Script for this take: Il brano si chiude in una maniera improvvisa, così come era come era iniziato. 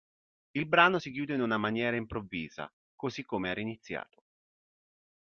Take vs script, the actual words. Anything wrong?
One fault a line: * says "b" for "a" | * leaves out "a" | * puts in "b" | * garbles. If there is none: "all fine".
* leaves out "come era"